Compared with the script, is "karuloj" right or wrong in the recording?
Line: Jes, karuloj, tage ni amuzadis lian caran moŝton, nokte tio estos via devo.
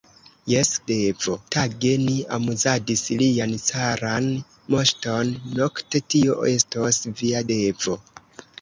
wrong